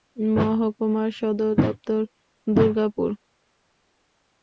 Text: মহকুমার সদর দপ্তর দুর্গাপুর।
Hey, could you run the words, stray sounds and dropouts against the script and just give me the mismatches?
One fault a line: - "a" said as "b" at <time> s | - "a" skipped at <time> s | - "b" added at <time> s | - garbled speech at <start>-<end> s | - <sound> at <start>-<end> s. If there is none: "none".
none